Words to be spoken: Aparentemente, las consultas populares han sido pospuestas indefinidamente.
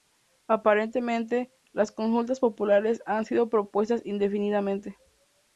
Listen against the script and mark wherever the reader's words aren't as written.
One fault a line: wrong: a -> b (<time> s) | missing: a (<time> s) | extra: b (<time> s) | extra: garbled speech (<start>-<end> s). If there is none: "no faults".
no faults